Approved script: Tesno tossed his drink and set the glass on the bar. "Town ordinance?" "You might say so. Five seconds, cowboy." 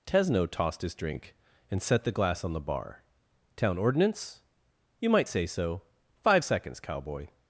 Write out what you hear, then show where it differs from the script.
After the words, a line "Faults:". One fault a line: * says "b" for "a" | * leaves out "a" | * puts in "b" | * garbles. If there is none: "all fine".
Tesno tossed his drink and set the glass on the bar. "Town ordinance?" "You might say so. Five seconds, cowboy."
Faults:
all fine